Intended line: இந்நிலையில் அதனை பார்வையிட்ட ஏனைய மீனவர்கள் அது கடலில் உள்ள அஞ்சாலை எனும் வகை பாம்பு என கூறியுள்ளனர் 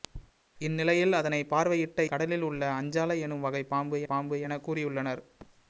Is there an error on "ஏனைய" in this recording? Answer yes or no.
yes